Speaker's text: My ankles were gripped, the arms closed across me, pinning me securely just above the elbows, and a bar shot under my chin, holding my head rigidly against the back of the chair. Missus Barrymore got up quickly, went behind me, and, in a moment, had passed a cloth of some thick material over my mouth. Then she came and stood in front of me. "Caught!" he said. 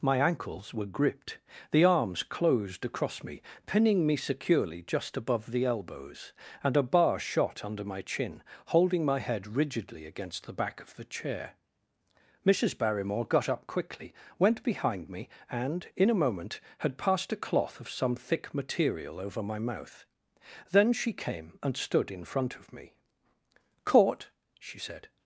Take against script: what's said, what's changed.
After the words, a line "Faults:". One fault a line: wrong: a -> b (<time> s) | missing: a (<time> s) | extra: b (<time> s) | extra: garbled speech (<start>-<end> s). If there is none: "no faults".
My ankles were gripped, the arms closed across me, pinning me securely just above the elbows, and a bar shot under my chin, holding my head rigidly against the back of the chair. Missus Barrymore got up quickly, went behind me, and, in a moment, had passed a cloth of some thick material over my mouth. Then she came and stood in front of me. "Caught!" she said.
Faults:
wrong: he -> she (24.6 s)